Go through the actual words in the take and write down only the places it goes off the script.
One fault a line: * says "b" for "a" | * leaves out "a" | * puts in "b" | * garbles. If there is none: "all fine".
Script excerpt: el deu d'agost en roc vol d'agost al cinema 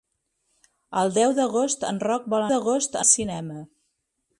all fine